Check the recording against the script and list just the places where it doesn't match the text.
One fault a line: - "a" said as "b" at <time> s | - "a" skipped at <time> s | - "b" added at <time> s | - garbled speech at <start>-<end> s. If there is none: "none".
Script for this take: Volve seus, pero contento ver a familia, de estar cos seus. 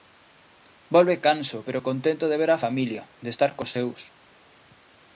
- "seus" said as "canso" at 1.3 s
- "de" added at 2.3 s